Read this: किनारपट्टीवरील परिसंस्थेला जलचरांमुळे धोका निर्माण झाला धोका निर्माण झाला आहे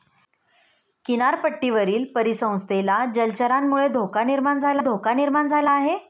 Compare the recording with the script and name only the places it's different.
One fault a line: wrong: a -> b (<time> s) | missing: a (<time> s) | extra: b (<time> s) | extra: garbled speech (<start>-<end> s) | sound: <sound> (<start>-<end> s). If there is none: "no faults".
no faults